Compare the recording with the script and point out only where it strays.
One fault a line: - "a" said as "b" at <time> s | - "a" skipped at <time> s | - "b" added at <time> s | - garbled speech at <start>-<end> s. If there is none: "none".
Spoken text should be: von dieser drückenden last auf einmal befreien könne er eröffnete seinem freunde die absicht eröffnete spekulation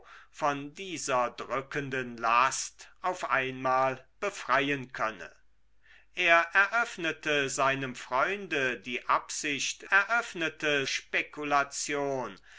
none